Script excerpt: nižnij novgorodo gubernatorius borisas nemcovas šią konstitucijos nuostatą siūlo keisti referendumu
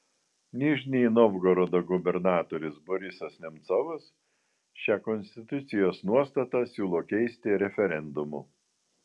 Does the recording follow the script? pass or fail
pass